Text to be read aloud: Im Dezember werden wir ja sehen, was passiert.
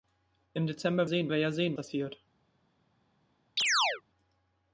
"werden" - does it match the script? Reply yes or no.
no